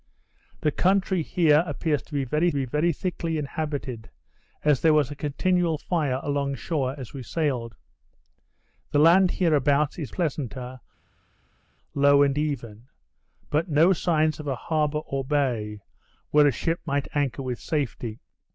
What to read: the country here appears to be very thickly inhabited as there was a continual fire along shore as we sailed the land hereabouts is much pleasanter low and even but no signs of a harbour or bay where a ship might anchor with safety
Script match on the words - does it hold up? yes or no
no